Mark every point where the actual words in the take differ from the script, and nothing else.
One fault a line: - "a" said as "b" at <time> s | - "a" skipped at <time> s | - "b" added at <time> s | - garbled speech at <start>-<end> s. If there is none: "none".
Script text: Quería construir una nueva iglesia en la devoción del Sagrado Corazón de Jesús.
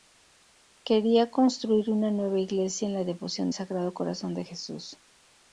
- "del" skipped at 3.5 s